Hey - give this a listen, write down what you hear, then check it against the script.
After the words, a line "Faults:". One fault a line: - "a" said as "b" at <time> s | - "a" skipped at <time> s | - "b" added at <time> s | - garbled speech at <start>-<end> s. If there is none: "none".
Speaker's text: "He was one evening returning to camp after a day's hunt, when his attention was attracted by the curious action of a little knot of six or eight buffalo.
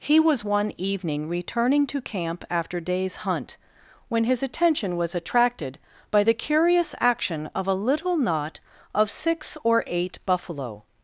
"He was one evening returning to camp after day's hunt, when his attention was attracted by the curious action of a little knot of six or eight buffalo.
Faults:
- "a" skipped at 2.8 s